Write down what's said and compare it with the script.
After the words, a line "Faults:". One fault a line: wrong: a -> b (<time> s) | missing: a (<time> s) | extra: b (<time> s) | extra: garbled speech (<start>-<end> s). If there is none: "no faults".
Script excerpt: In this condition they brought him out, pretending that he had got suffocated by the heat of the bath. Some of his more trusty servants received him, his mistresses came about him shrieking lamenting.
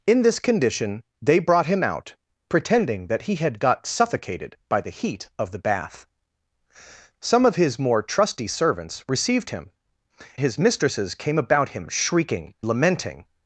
In this condition they brought him out, pretending that he had got suffocated by the heat of the bath. Some of his more trusty servants received him, his mistresses came about him shrieking lamenting.
Faults:
no faults